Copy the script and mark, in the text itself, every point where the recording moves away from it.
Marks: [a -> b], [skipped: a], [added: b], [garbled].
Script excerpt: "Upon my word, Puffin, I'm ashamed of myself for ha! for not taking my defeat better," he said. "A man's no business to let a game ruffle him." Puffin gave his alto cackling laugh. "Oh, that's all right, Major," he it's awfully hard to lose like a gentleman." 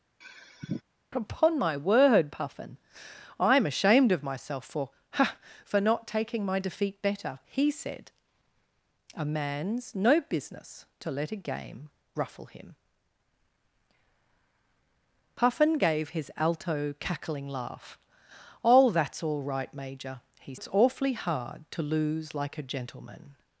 "Upon my word, Puffin, I'm ashamed of myself for ha! for not taking my defeat better," he said. "A man's no business to let a game ruffle him." Puffin gave his alto cackling laugh. "Oh, that's all right, Major," he it's awfully hard to lose like a gentleman."